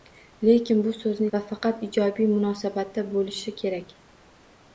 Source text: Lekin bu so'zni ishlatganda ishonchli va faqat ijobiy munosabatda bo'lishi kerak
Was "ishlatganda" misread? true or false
true